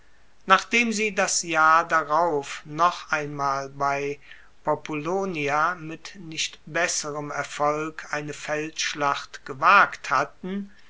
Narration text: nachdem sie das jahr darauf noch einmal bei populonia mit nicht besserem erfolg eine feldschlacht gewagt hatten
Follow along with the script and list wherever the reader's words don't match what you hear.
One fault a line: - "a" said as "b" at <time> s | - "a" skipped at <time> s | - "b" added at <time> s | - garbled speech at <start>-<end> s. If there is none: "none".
none